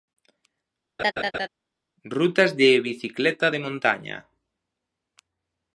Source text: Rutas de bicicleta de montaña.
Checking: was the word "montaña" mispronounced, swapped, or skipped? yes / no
no